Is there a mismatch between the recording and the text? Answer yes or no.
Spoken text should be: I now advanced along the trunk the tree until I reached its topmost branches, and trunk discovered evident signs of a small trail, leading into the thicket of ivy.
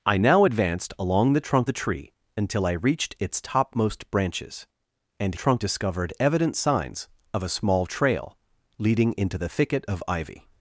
no